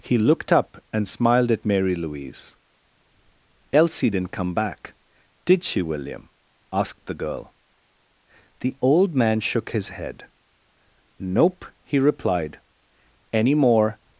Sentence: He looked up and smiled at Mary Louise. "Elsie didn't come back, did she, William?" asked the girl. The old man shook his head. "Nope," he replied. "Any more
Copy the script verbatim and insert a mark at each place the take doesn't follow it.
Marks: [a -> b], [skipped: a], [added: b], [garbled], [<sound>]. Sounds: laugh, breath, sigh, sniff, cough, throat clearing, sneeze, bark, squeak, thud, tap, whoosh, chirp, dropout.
He looked up and smiled at Mary Louise. "Elsie didn't come back, did she, William?" asked the girl. The old man shook his head. "Nope," he replied. "Any more